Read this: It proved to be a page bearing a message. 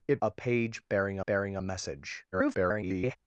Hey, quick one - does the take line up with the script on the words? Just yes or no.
no